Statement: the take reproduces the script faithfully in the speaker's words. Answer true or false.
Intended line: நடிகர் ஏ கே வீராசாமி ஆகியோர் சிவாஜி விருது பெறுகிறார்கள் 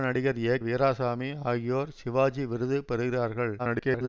false